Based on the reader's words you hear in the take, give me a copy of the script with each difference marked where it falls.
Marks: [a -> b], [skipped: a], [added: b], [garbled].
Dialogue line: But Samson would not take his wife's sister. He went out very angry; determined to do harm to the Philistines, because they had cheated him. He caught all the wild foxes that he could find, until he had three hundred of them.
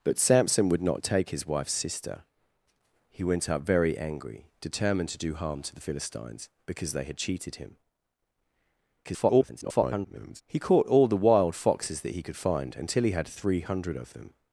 But Samson would not take his wife's sister. He went out very angry; determined to do harm to the Philistines, because they had cheated him. [garbled] He caught all the wild foxes that he could find, until he had three hundred of them.